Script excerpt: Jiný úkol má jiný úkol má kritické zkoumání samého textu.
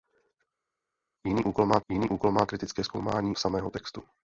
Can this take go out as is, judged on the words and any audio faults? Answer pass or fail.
pass